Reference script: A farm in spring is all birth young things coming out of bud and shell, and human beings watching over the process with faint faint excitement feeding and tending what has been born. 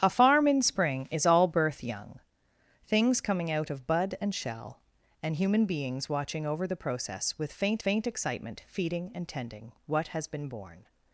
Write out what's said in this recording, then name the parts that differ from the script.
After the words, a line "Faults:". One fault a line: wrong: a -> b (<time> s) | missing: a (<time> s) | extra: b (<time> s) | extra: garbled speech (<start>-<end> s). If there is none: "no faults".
A farm in spring is all birth young things coming out of bud and shell, and human beings watching over the process with faint faint excitement feeding and tending what has been born.
Faults:
no faults